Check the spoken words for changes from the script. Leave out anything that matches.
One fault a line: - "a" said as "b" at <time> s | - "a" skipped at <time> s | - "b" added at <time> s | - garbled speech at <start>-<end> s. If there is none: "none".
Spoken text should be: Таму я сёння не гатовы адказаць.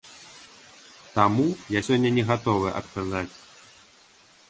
none